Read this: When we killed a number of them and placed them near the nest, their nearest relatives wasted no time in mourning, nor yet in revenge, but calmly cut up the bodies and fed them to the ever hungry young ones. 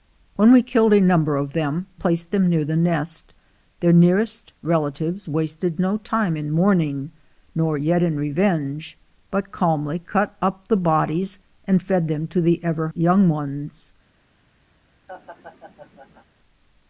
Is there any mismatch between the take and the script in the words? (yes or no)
yes